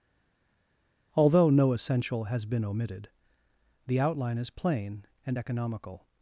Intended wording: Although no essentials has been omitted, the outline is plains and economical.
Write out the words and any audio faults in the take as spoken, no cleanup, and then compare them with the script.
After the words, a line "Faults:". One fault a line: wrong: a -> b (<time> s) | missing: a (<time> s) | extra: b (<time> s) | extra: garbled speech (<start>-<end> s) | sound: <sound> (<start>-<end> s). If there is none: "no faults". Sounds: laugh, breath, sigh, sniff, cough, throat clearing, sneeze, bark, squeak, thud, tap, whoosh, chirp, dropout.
Although no essential has been omitted, the outline is plain and economical.
Faults:
wrong: essentials -> essential (1.7 s)
wrong: plains -> plain (4.5 s)